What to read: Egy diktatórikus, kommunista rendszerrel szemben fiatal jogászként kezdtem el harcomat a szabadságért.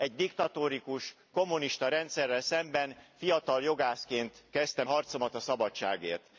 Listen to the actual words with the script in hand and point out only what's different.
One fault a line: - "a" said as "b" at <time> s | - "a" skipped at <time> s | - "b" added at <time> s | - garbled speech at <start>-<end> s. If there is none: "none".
- "el" skipped at 4.9 s